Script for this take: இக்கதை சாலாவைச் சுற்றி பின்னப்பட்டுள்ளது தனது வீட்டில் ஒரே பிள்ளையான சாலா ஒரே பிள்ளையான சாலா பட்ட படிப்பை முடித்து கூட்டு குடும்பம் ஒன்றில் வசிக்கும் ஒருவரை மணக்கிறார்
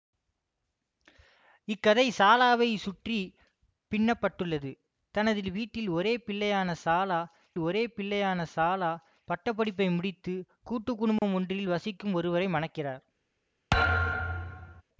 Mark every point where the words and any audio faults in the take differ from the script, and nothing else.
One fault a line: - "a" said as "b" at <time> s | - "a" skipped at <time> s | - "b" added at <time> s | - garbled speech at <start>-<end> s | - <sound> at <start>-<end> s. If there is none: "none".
- dropout at 11.2-11.2 s
- thud at 13.7-14.8 s